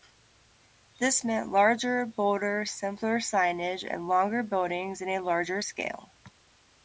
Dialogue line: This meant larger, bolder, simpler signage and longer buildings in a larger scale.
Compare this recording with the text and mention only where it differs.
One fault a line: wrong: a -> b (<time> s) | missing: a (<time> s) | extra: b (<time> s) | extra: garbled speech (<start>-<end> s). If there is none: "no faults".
no faults